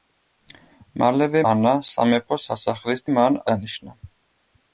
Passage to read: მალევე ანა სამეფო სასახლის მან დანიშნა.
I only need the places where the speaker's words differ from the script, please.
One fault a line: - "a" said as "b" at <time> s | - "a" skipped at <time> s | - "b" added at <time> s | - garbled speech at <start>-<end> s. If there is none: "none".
none